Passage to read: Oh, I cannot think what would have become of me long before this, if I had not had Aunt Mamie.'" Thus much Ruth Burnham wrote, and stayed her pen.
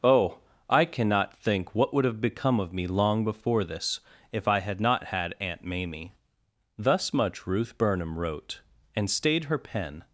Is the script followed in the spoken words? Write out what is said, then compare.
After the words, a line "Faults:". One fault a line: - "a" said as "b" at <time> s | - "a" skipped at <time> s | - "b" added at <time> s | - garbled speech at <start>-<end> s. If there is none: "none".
Oh, I cannot think what would have become of me long before this, if I had not had Aunt Mamie.'" Thus much Ruth Burnham wrote, and stayed her pen.
Faults:
none